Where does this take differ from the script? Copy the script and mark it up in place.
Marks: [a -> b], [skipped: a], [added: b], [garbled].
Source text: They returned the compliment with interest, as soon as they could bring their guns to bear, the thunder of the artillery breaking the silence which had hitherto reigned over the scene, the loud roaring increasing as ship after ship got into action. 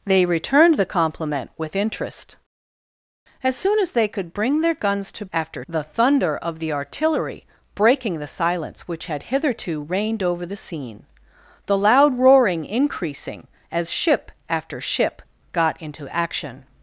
They returned the compliment with interest, as soon as they could bring their guns to [bear, -> after] the thunder of the artillery breaking the silence which had hitherto reigned over the scene, the loud roaring increasing as ship after ship got into action.